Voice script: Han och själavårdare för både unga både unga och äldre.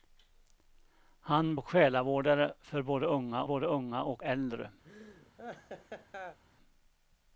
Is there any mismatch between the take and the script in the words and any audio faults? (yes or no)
yes